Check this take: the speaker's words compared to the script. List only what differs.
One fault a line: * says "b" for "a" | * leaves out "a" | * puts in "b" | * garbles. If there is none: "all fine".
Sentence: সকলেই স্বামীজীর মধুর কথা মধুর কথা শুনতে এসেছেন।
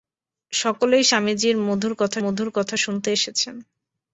all fine